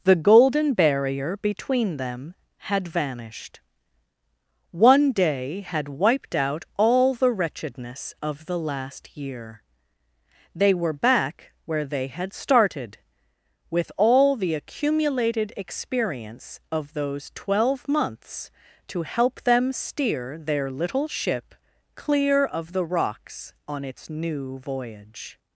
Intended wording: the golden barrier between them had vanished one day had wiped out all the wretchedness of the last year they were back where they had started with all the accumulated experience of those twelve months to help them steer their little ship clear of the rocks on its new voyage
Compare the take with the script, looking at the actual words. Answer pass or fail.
pass